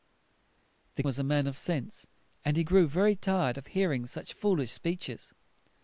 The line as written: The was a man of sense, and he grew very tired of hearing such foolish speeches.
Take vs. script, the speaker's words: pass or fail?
pass